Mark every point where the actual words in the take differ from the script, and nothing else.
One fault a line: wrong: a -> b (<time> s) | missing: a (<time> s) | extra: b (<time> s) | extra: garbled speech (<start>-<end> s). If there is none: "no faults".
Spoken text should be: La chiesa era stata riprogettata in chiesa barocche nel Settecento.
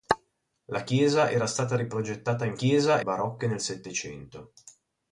no faults